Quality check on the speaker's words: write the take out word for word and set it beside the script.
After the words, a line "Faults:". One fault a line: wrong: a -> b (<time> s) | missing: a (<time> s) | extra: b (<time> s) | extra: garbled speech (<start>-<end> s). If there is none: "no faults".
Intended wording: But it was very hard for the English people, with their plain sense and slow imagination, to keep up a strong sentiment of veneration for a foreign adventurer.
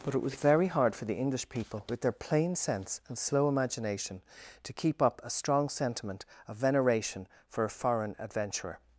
But it was very hard for the English people, with their plain sense and slow imagination, to keep up a strong sentiment of veneration for a foreign adventurer.
Faults:
no faults